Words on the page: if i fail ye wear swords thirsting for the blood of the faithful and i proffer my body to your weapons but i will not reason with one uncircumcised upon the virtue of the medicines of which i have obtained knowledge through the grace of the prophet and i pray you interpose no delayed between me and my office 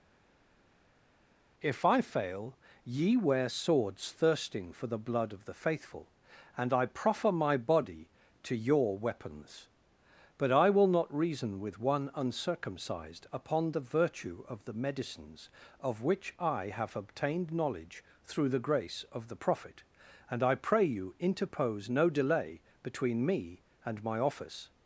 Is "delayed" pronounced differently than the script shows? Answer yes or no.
yes